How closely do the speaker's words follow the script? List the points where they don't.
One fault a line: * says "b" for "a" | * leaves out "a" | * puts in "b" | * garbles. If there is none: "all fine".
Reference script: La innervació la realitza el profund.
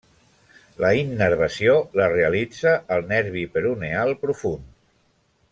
* puts in "nervi peroneal"